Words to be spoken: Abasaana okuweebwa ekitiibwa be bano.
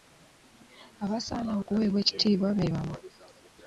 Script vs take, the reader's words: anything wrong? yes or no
no